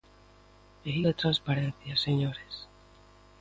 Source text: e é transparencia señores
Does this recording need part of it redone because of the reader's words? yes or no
no